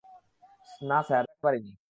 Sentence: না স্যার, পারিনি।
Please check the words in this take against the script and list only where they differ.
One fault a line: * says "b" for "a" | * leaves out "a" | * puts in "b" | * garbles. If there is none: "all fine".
all fine